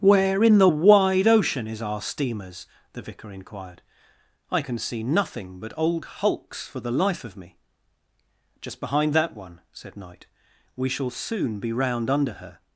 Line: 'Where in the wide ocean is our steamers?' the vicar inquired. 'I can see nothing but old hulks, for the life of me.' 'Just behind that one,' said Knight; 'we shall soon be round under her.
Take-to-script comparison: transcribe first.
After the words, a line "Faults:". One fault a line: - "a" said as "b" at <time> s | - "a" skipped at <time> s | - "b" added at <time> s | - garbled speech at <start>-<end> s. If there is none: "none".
'Where in the wide ocean is our steamers?' the vicar inquired. 'I can see nothing but old hulks, for the life of me.' 'Just behind that one,' said Knight; 'we shall soon be round under her.
Faults:
none